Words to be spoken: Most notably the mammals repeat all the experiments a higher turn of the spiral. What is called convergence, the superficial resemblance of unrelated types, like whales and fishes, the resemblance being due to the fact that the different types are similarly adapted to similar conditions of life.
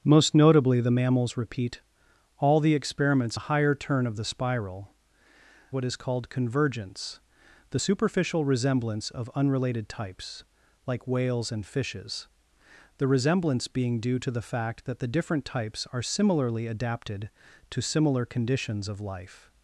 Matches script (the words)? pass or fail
pass